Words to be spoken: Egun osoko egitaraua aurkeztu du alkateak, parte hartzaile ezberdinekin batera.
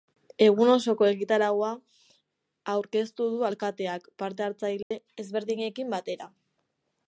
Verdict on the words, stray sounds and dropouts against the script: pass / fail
fail